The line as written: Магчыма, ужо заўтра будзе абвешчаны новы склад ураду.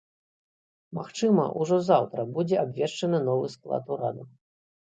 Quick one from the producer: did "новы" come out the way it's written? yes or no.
yes